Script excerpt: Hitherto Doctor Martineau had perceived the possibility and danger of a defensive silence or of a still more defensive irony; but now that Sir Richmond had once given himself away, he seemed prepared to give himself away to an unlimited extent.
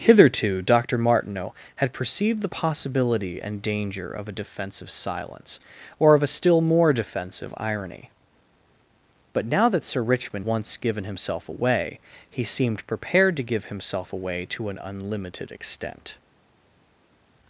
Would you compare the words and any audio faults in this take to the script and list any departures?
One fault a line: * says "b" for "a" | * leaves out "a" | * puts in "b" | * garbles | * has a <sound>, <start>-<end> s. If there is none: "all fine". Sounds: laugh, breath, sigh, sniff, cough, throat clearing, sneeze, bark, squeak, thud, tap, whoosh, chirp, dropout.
* leaves out "had"